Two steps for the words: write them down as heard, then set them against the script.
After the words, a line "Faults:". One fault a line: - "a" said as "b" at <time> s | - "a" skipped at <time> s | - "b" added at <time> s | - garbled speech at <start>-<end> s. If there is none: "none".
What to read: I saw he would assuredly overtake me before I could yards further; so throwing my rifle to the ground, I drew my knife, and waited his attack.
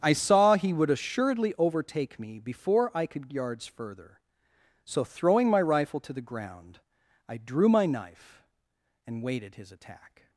I saw he would assuredly overtake me before I could yards further; so throwing my rifle to the ground, I drew my knife, and waited his attack.
Faults:
none